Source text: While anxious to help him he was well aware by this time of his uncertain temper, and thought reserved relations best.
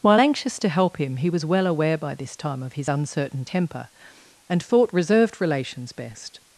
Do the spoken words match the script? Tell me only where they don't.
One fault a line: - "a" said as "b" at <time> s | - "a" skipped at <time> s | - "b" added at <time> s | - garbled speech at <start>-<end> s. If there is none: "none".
none